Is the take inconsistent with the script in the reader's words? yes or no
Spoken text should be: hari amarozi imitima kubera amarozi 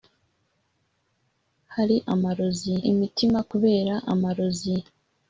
no